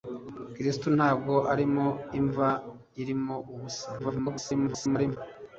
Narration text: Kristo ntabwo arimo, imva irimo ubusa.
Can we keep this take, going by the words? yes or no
no